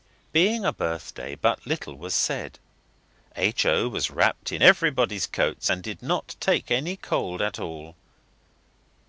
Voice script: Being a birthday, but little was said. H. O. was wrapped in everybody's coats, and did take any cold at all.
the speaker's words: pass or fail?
fail